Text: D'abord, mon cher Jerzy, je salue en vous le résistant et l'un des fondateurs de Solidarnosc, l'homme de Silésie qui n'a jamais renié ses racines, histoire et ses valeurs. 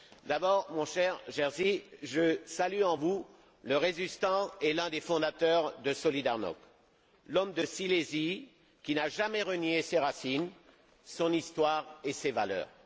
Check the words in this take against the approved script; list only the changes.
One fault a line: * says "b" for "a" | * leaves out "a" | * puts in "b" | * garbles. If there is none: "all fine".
* puts in "son"